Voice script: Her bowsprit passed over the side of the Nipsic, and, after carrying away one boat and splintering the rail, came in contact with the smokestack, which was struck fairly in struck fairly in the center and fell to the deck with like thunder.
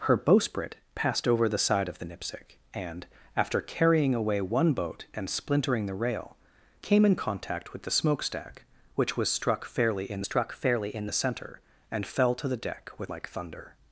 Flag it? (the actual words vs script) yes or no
no